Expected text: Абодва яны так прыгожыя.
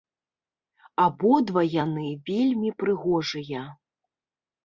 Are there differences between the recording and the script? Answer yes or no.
yes